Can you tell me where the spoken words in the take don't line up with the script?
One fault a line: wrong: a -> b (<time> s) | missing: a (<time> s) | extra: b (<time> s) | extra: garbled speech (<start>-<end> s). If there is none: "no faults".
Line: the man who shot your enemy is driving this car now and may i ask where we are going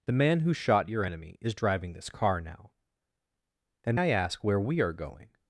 missing: may (4.0 s)